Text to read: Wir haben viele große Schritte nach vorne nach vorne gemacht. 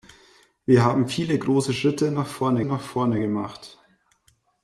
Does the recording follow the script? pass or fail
pass